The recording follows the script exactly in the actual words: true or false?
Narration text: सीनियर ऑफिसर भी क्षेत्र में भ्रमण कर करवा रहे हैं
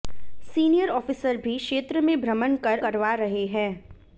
true